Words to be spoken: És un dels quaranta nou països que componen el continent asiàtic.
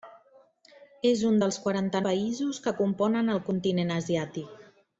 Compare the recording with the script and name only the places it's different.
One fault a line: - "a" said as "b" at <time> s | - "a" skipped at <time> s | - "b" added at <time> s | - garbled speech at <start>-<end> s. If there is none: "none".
- "nou" skipped at 2.0 s